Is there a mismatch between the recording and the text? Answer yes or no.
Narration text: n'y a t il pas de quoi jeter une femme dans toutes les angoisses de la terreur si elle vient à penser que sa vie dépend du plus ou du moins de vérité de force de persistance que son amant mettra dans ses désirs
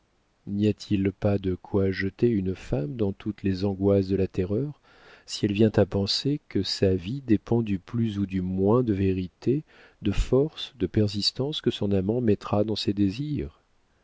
no